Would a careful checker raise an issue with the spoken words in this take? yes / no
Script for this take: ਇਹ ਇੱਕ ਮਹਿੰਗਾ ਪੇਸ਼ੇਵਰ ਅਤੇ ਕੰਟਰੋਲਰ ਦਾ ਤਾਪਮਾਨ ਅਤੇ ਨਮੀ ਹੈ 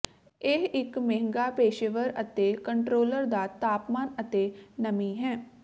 no